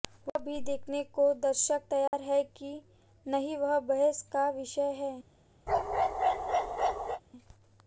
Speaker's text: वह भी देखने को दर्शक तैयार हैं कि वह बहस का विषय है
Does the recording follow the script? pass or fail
fail